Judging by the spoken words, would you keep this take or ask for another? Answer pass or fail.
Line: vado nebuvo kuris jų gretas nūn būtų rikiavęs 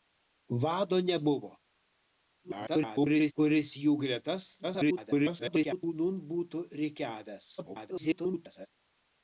fail